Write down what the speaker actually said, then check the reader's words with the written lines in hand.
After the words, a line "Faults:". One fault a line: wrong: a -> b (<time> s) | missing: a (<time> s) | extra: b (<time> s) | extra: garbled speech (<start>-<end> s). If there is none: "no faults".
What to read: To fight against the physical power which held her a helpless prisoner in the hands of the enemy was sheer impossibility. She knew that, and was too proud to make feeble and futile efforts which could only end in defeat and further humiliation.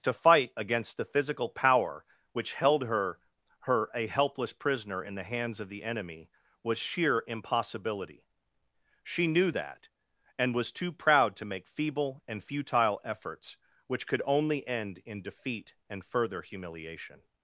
To fight against the physical power which held her her a helpless prisoner in the hands of the enemy was sheer impossibility. She knew that, and was too proud to make feeble and futile efforts which could only end in defeat and further humiliation.
Faults:
extra: her (3.6 s)